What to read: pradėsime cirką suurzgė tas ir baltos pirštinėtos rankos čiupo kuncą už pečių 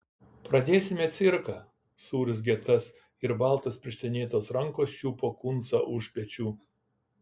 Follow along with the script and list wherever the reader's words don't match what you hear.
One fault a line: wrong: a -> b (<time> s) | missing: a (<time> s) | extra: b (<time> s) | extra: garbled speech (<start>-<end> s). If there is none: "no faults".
no faults